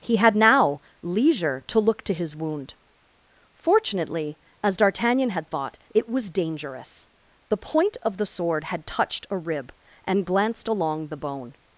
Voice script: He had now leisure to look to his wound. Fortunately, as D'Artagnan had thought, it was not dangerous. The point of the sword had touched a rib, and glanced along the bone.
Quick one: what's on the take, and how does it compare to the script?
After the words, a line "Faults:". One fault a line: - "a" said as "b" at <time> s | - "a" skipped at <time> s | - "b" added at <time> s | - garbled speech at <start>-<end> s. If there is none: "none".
He had now leisure to look to his wound. Fortunately, as D'Artagnan had thought, it was dangerous. The point of the sword had touched a rib, and glanced along the bone.
Faults:
- "not" skipped at 6.3 s